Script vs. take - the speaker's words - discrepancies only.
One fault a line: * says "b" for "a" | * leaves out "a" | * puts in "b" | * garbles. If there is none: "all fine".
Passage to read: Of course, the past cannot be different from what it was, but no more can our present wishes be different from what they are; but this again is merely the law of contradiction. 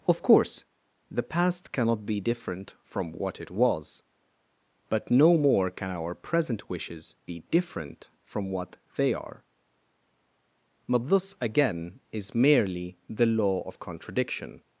all fine